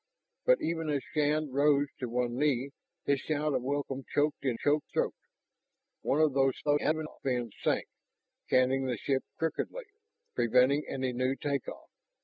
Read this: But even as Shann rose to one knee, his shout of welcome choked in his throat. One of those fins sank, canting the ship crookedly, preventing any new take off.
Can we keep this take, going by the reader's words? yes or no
no